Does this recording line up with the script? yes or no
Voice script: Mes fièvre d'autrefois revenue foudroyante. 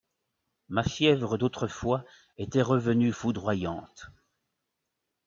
no